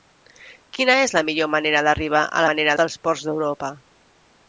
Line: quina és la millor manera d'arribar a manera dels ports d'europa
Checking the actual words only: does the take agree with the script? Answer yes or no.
yes